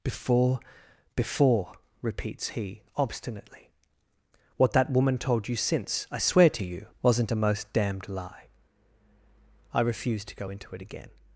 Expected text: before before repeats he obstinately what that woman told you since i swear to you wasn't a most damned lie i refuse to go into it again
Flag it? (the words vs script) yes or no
no